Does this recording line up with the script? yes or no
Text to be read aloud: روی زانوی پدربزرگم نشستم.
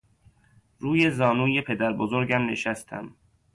yes